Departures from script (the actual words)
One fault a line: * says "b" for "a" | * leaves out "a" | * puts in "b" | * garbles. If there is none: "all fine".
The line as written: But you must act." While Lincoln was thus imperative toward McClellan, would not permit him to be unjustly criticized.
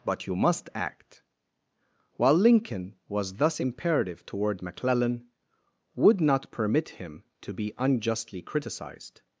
all fine